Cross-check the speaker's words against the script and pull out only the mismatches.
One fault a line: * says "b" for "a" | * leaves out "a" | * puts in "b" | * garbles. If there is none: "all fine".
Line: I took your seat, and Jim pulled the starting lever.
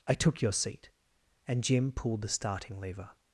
all fine